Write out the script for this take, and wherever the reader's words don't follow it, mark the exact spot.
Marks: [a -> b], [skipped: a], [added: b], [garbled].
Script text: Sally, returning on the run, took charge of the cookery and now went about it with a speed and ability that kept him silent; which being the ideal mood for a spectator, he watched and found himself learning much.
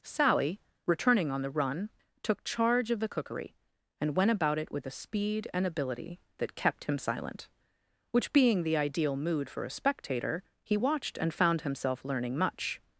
Sally, returning on the run, took charge of the cookery and [skipped: now] went about it with a speed and ability that kept him silent; which being the ideal mood for a spectator, he watched and found himself learning much.